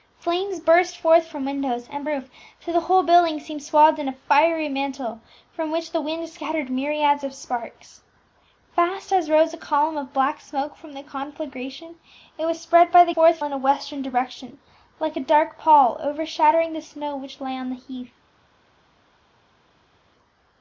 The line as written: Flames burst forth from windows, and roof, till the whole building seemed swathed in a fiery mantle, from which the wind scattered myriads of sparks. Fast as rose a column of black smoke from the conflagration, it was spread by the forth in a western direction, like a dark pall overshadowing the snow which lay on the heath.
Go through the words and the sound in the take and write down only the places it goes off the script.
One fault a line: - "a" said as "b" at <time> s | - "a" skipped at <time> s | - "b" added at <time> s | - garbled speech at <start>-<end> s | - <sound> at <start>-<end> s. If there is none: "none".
none